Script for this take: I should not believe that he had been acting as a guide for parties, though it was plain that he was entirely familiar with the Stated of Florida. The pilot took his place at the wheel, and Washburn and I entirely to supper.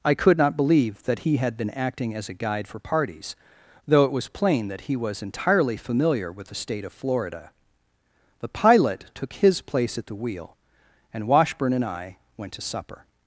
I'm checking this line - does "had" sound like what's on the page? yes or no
yes